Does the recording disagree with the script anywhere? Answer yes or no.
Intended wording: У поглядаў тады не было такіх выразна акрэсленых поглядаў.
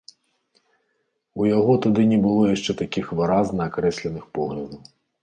yes